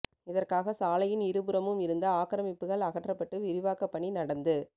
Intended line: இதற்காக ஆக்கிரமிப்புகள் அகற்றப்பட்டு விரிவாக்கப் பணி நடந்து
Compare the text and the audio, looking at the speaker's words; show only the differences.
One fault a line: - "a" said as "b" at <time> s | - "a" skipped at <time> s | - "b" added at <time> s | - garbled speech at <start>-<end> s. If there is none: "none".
- "சாலையின் இருபுறமும் இருந்த" added at 0.7 s